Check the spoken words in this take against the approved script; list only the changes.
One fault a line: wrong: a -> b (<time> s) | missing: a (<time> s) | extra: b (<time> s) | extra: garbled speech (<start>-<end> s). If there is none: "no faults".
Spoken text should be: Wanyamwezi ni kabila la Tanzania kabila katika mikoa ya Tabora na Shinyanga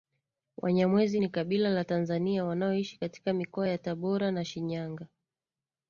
wrong: kabila -> wanaoishi (2.4 s)